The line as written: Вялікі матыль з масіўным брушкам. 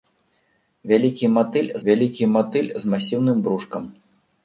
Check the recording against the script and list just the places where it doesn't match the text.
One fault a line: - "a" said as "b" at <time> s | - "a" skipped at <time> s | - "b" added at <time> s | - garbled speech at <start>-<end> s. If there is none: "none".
- "вялікі матыль" added at 1.9 s